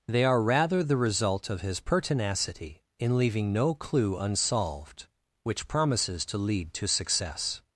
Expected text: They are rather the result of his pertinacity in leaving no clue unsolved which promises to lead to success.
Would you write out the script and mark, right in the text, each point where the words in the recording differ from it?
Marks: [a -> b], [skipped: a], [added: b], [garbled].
They are rather the result of his pertinacity in leaving no clue unsolved which promises to lead to success.